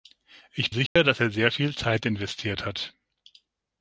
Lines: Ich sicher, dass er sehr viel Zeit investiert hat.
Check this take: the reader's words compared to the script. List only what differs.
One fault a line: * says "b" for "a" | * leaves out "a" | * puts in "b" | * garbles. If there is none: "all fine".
all fine